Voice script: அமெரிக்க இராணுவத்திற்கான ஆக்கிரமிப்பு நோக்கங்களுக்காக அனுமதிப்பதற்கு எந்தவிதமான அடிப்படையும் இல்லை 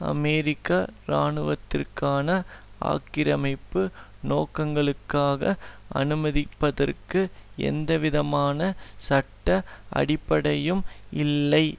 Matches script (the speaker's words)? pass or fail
fail